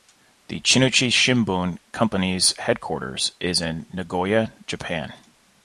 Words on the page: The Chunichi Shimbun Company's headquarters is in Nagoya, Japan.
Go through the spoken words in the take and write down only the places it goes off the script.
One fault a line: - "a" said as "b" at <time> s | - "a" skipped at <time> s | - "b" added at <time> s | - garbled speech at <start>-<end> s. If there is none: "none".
none